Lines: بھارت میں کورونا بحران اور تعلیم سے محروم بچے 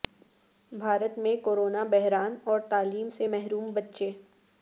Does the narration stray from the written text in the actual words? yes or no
no